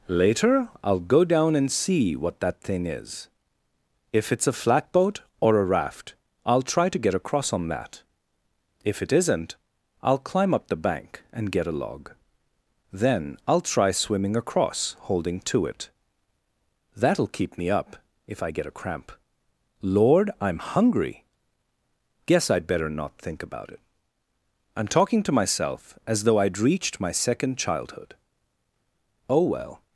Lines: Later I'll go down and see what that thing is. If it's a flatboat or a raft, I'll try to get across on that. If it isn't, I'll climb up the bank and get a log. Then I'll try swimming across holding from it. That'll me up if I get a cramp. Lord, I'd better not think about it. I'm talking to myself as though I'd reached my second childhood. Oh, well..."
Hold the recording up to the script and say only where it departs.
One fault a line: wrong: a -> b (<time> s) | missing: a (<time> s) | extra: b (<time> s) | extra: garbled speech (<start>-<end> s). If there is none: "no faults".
wrong: from -> to (15.4 s)
extra: keep (17.3 s)
extra: I'm hungry Guess (20.4 s)